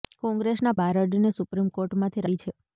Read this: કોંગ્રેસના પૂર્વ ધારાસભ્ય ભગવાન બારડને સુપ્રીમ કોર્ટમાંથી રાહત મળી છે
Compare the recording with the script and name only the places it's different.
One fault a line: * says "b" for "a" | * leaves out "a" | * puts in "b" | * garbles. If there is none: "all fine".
* leaves out "પૂર્વ ધારાસભ્ય ભગવાન"
* leaves out "રાહત"